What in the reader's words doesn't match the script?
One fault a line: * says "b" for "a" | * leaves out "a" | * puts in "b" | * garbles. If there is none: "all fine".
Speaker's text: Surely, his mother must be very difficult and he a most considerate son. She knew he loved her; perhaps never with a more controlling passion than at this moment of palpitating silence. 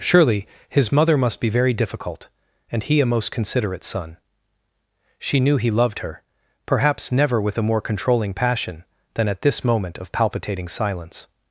all fine